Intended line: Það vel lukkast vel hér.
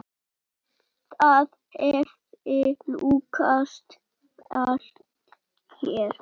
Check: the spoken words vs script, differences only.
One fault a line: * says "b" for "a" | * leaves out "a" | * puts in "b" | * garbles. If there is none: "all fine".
* says "hefði" for "vel"